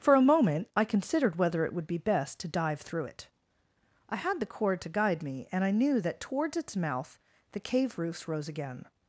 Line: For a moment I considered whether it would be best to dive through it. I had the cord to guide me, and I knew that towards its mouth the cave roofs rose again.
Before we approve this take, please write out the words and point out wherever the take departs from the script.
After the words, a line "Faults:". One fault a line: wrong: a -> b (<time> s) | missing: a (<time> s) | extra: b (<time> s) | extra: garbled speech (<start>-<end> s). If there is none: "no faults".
For a moment I considered whether it would be best to dive through it. I had the cord to guide me, and I knew that towards its mouth the cave roofs rose again.
Faults:
no faults